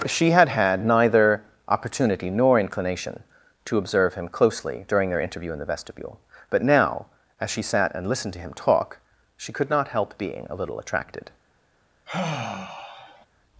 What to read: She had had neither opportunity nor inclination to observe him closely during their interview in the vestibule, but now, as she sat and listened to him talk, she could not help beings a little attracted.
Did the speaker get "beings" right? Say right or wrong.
wrong